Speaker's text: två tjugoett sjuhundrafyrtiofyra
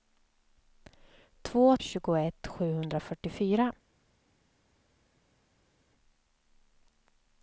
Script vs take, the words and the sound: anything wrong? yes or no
no